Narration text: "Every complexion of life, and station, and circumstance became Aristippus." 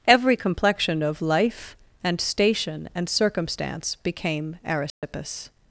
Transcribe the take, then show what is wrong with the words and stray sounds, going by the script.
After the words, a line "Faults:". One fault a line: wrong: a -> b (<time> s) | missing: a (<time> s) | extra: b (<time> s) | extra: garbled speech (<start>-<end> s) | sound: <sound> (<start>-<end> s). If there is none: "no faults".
"Every complexion of life, and station, and circumstance became Aristippus."
Faults:
sound: dropout (4.9-5.0 s)